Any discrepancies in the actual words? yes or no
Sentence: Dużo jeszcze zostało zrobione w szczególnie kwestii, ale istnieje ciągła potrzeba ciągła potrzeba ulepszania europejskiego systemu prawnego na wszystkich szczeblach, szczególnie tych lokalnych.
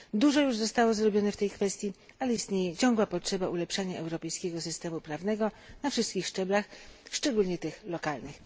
yes